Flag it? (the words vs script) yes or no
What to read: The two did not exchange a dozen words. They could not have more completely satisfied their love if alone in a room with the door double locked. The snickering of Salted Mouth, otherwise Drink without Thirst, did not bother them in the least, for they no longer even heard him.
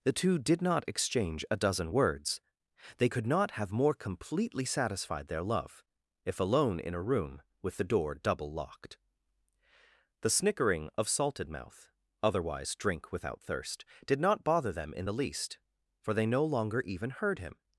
no